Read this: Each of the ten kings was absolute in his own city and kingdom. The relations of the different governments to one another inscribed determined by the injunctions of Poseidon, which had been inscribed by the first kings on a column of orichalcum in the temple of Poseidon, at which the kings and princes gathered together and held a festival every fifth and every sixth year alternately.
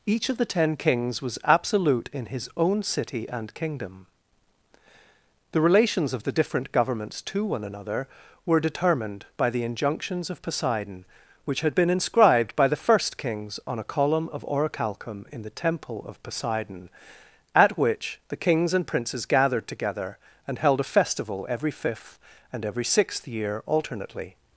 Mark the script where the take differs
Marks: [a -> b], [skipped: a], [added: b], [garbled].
Each of the ten kings was absolute in his own city and kingdom. The relations of the different governments to one another [inscribed -> were] determined by the injunctions of Poseidon, which had been inscribed by the first kings on a column of orichalcum in the temple of Poseidon, at which the kings and princes gathered together and held a festival every fifth and every sixth year alternately.